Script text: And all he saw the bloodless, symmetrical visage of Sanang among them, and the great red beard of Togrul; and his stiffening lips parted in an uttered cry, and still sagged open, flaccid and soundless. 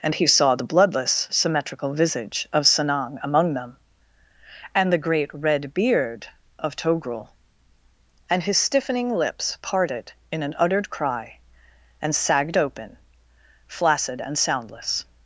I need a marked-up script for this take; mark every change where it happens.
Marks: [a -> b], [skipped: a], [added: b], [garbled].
And [skipped: all] he saw the bloodless, symmetrical visage of Sanang among them, and the great red beard of Togrul; and his stiffening lips parted in an uttered cry, and [skipped: still] sagged open, flaccid and soundless.